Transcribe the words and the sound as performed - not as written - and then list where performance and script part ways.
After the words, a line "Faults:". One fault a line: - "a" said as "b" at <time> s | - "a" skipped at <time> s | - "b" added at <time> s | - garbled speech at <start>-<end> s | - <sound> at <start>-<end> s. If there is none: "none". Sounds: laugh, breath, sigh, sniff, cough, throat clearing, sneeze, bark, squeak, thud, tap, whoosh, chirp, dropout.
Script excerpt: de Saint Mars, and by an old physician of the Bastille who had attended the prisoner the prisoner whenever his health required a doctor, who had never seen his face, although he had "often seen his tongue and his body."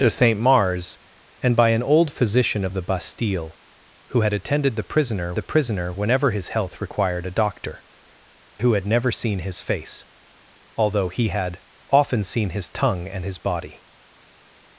de Saint Mars, and by an old physician of the Bastille who had attended the prisoner the prisoner whenever his health required a doctor, who had never seen his face, although he had "often seen his tongue and his body."
Faults:
none